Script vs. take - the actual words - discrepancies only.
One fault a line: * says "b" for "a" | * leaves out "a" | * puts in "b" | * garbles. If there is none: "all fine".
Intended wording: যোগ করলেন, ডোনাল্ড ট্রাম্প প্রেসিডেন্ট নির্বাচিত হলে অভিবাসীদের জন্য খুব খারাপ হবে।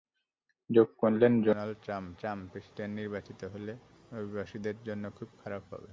* puts in "ট্রাম্প"